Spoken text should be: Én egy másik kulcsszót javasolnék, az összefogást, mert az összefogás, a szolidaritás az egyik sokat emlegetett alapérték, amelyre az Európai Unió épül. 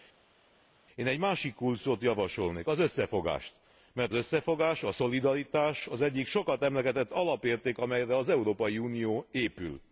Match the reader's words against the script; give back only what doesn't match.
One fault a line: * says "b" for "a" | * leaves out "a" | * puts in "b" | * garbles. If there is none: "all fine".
* leaves out "az"